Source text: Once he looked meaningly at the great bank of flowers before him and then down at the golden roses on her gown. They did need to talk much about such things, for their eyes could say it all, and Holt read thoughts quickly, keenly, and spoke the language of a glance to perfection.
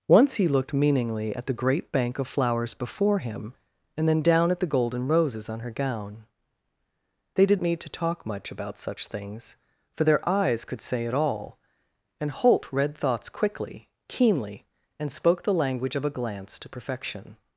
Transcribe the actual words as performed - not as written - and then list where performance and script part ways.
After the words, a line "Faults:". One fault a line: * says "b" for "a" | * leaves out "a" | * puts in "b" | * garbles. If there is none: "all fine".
Once he looked meaningly at the great bank of flowers before him and then down at the golden roses on her gown. They did need to talk much about such things, for their eyes could say it all, and Holt read thoughts quickly, keenly, and spoke the language of a glance to perfection.
Faults:
all fine